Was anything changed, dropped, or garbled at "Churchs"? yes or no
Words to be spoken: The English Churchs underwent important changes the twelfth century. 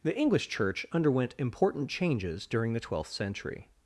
yes